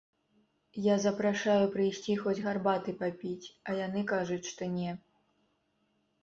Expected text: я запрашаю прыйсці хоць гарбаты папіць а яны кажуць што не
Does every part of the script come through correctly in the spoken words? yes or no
yes